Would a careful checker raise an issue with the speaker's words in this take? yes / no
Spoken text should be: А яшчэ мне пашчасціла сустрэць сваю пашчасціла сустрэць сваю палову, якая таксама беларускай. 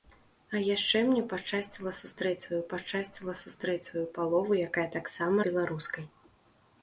no